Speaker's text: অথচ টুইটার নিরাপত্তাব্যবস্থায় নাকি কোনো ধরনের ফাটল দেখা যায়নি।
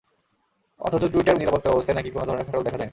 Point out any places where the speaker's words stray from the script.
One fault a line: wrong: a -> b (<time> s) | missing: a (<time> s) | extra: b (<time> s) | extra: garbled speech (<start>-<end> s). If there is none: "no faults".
no faults